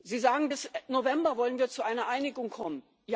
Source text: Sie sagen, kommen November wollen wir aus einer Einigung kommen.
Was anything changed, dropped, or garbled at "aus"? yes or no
yes